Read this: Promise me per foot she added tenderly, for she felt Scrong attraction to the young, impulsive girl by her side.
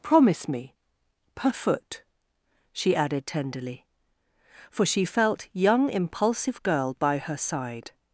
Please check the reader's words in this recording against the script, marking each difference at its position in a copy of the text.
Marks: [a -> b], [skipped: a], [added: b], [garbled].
Promise me per foot she added tenderly, for she felt [skipped: Scrong attraction to the] young, impulsive girl by her side.